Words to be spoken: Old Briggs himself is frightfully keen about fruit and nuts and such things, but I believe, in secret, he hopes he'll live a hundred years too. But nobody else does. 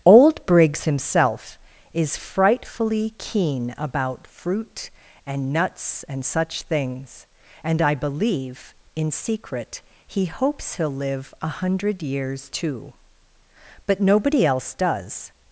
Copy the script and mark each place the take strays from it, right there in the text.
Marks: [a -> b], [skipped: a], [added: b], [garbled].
Old Briggs himself is frightfully keen about fruit and nuts and such things, [but -> and] I believe, in secret, he hopes he'll live a hundred years too. But nobody else does.